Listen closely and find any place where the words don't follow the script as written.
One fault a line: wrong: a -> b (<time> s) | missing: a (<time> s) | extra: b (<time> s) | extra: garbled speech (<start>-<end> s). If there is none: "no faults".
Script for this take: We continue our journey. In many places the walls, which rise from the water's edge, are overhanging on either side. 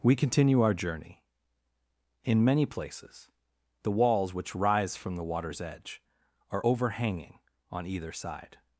no faults